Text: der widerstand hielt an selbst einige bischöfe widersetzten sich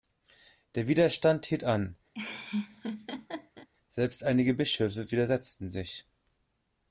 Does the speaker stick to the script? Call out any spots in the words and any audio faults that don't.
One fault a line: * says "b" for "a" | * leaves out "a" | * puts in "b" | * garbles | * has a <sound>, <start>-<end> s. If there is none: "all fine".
* has a laugh, 2.1-3.7 s